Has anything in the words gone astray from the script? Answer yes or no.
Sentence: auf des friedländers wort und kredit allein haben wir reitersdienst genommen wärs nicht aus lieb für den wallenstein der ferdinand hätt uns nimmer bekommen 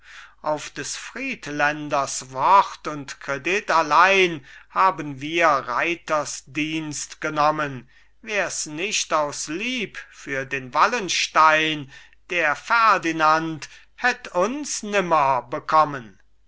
no